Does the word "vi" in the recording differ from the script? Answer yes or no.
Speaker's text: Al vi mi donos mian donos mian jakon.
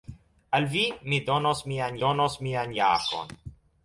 no